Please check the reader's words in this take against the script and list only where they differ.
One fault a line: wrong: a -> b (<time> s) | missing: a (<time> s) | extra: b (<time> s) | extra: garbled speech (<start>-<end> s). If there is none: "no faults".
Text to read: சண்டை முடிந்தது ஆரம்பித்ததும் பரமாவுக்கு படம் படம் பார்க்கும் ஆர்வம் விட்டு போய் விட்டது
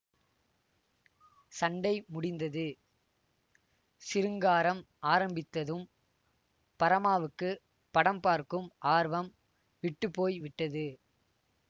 extra: சிருங்காரம் (4.0 s)
missing: படம் (8.2 s)